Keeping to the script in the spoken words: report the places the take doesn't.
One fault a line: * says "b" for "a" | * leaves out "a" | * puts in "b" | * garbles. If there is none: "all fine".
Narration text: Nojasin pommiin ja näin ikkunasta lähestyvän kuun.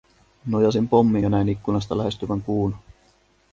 all fine